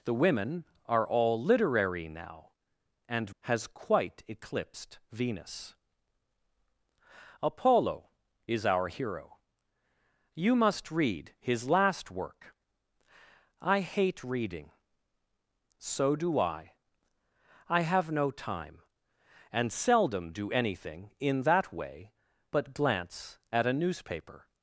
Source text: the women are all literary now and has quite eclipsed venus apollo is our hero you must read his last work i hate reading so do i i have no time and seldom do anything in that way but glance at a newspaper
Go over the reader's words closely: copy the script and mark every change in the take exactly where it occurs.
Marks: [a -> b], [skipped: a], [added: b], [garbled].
the women are all literary now and has quite eclipsed venus apollo is our hero you must read his last work i hate reading so do i i have no time and seldom do anything in that way but glance at a newspaper